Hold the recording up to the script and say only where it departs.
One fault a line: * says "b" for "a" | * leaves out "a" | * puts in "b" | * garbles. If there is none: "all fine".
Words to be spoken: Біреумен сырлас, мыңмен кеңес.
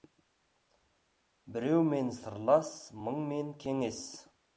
all fine